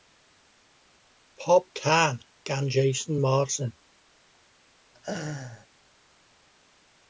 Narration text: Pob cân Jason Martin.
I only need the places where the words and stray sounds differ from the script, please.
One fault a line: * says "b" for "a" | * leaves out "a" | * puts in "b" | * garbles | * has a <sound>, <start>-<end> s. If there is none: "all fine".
* puts in "gan"
* has a laugh, 4.9-5.7 s